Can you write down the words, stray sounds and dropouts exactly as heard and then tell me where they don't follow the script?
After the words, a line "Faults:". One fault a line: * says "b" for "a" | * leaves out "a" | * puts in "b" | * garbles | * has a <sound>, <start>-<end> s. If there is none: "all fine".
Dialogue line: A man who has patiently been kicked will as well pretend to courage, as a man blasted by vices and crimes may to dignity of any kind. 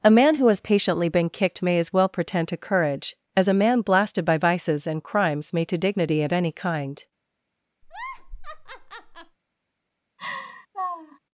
A man who has patiently been kicked may as well pretend to courage, as a man blasted by vices and crimes may to dignity of any kind.
Faults:
* says "may" for "will"
* has a laugh, 7.8-9.4 s
* has a laugh, 10.2-11.2 s